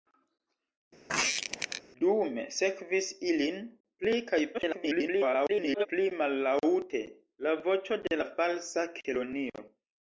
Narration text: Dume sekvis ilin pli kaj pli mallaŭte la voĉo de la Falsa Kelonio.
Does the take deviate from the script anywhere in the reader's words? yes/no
yes